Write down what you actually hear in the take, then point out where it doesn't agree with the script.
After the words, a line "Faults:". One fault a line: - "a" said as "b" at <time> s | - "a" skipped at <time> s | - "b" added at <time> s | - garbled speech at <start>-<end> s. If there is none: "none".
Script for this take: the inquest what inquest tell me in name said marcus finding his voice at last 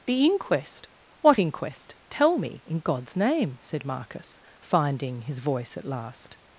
the inquest what inquest tell me in god's name said marcus finding his voice at last
Faults:
- "god's" added at 2.8 s